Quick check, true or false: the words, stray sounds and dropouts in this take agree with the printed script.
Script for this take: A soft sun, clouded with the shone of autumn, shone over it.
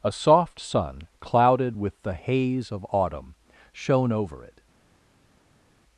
false